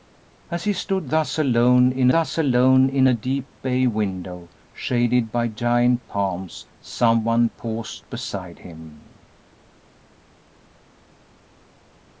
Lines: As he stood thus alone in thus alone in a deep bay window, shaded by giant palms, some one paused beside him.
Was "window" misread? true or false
false